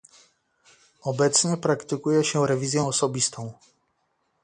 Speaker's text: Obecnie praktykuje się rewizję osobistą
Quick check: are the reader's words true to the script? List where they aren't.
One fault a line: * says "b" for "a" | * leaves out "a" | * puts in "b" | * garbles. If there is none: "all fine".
all fine